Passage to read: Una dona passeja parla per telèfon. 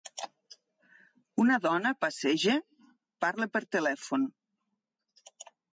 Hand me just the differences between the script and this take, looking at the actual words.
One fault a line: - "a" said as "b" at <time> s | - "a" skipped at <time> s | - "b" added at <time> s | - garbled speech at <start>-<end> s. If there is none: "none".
none